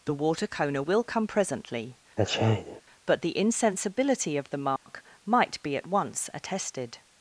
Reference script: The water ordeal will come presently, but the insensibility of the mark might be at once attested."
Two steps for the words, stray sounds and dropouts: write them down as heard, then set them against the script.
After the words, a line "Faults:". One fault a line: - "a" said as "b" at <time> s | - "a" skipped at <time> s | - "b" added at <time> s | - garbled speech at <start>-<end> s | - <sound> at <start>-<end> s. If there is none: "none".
The water coner will come presently, but the insensibility of the mark might be at once attested."
Faults:
- "ordeal" said as "coner" at 0.5 s
- sneeze at 2.2-2.8 s
- dropout at 4.8-4.9 s